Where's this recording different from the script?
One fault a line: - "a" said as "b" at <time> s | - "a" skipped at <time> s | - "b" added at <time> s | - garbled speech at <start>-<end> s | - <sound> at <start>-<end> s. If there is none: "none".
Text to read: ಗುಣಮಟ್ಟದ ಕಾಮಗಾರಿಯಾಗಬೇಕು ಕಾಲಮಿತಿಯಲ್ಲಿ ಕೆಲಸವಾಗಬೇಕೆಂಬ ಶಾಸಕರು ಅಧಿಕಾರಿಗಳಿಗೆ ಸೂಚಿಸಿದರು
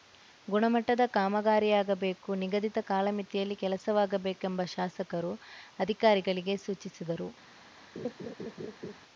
- "ನಿಗದಿತ" added at 2.4 s
- laugh at 8.0-9.0 s